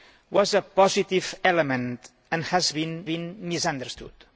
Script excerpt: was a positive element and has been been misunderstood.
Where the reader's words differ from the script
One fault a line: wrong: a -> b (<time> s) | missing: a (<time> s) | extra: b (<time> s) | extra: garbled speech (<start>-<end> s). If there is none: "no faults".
no faults